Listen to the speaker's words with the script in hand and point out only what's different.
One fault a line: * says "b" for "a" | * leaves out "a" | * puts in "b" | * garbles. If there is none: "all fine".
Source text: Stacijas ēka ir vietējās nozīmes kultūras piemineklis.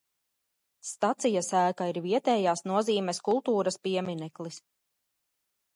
all fine